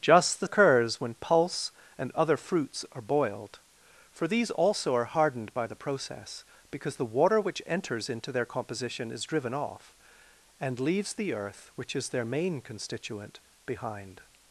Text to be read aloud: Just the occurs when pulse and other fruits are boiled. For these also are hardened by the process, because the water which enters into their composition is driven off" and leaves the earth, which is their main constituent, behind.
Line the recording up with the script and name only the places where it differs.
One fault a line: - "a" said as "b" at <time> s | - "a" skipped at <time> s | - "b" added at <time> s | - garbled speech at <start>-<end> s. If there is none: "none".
none